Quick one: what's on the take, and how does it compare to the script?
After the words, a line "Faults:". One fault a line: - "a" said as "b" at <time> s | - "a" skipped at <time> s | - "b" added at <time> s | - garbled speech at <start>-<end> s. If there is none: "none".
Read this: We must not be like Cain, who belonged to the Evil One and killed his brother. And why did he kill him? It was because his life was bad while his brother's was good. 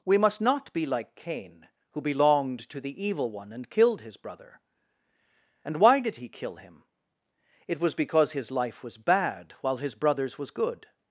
We must not be like Cain, who belonged to the Evil One and killed his brother. And why did he kill him? It was because his life was bad while his brother's was good.
Faults:
none